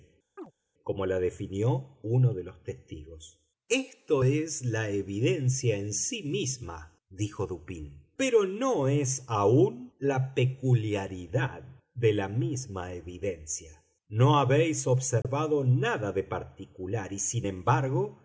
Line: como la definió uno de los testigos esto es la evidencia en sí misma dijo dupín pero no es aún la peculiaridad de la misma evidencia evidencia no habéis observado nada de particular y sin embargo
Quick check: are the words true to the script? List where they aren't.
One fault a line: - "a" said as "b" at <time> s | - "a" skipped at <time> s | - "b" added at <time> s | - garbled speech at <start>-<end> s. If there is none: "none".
- "evidencia" skipped at 13.8 s